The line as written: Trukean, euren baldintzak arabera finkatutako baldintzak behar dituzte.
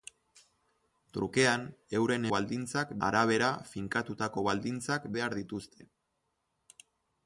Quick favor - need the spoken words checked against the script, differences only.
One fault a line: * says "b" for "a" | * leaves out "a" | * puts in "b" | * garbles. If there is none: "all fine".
all fine